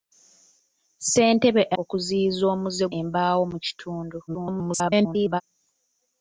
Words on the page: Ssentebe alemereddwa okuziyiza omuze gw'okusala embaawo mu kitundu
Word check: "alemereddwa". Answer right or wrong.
wrong